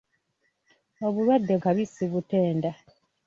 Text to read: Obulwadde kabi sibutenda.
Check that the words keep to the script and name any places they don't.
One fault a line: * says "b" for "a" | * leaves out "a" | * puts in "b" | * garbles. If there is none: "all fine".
all fine